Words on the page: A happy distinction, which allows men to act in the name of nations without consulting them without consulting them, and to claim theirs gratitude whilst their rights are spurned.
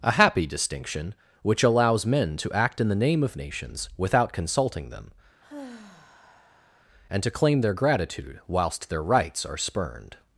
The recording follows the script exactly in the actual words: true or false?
false